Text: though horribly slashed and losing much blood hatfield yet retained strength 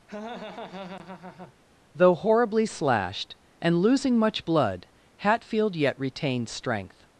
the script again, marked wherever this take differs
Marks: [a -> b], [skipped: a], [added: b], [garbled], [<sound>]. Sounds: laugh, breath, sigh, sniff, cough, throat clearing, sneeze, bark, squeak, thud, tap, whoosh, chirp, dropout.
[laugh] though horribly slashed and losing much blood hatfield yet retained strength